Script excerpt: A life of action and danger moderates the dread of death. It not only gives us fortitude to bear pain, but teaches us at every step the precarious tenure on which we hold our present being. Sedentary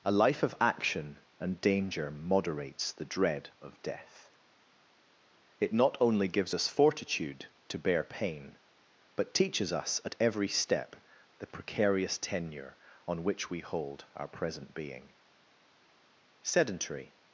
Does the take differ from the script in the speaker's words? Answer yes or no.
no